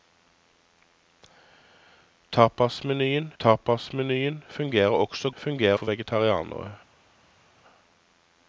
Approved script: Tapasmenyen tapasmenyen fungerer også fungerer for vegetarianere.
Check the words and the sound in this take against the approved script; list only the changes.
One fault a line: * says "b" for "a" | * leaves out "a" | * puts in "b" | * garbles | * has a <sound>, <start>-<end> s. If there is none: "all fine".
all fine